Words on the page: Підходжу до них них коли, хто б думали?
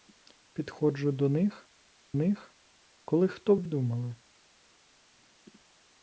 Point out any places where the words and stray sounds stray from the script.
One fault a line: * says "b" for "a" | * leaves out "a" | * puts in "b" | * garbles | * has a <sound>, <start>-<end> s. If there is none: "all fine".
all fine